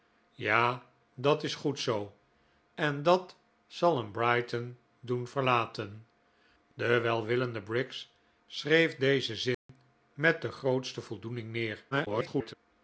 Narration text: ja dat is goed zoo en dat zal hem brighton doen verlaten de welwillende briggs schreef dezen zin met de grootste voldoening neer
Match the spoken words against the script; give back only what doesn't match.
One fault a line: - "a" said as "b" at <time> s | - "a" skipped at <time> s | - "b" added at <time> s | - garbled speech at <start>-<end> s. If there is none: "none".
- garbled speech at 11.9-12.5 s